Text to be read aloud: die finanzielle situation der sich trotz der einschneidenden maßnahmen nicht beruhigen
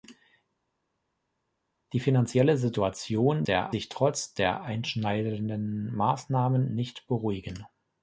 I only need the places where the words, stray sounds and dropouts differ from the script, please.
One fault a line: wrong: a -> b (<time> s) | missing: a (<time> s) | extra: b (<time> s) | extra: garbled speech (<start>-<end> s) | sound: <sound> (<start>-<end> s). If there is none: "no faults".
no faults